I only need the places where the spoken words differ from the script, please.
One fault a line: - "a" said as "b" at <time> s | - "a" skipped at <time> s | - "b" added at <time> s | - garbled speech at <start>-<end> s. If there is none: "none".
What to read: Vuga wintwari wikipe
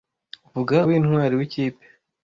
none